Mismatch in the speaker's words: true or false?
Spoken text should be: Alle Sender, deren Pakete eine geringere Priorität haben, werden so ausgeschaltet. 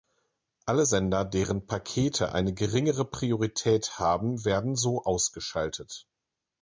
false